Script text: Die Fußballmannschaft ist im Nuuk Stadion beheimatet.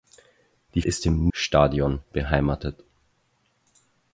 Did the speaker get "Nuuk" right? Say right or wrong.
wrong